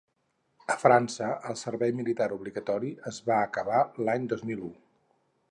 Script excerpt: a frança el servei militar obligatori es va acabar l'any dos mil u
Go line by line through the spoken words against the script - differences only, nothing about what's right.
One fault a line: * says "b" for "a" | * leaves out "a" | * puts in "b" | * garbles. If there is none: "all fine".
all fine